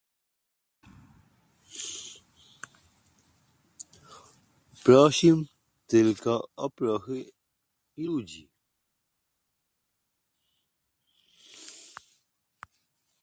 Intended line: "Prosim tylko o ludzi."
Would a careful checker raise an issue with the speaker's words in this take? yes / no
yes